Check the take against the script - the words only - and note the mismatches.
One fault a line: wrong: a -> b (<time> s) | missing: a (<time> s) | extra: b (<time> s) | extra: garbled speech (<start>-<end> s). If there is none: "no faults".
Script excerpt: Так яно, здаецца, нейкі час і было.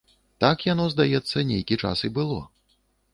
no faults